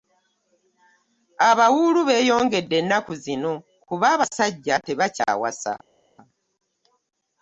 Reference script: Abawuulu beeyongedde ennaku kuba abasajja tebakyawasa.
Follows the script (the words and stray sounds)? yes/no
no